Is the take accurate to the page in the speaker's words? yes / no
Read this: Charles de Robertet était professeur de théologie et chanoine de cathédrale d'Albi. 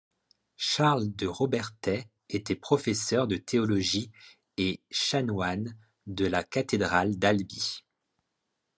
no